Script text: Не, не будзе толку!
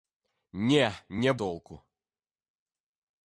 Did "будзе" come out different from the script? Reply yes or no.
yes